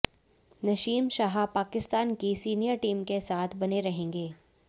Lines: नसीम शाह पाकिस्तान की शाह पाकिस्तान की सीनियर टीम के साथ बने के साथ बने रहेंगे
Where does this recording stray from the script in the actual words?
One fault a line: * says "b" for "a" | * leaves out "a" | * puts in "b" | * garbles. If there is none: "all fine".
* leaves out "शाह पाकिस्तान की"
* leaves out "के साथ बने"